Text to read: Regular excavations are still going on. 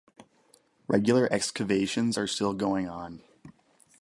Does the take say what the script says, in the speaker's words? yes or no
yes